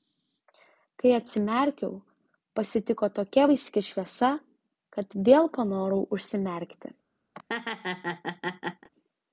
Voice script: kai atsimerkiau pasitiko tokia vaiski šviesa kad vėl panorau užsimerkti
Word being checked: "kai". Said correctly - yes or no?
yes